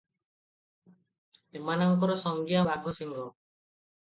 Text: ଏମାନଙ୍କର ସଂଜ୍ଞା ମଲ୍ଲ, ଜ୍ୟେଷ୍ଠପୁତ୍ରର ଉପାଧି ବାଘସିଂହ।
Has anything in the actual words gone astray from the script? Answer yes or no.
yes